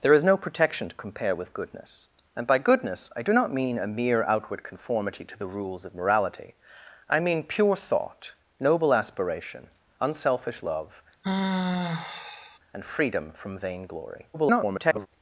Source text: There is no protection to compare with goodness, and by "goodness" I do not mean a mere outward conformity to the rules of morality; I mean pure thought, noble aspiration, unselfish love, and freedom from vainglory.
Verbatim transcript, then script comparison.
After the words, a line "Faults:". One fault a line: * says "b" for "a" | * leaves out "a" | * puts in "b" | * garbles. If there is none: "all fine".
There is no protection to compare with goodness, and by "goodness" I do not mean a mere outward conformity to the rules of morality; I mean pure thought, noble aspiration, unselfish love, and freedom from vainglory. [garbled]
Faults:
* garbles